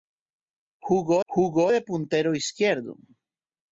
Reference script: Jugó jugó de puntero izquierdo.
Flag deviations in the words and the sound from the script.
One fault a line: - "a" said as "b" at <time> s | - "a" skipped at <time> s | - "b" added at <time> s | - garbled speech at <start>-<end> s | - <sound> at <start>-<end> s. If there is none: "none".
none